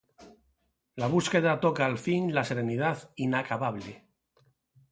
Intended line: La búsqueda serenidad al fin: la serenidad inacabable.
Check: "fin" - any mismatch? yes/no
no